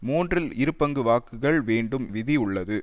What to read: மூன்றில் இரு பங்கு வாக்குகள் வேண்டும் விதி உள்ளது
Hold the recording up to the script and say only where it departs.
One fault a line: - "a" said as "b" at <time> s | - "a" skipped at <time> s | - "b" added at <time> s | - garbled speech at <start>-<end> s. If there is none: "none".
none